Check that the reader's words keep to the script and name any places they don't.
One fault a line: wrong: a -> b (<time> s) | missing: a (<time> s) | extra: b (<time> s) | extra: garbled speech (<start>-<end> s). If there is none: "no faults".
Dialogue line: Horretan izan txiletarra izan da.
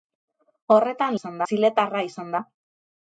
no faults